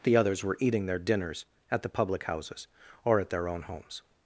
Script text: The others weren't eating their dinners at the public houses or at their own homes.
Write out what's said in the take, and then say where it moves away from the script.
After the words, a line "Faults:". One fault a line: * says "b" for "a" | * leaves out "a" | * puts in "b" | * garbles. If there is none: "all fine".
The others were eating their dinners at the public houses or at their own homes.
Faults:
* says "were" for "weren't"